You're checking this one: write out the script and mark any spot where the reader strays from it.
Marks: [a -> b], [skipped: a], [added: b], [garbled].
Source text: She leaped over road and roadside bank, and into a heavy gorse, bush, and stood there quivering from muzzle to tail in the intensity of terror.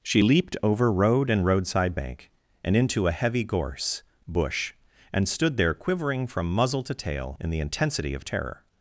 She leaped over road and roadside bank, and into a heavy gorse, bush, and stood there quivering from muzzle to tail in the intensity of terror.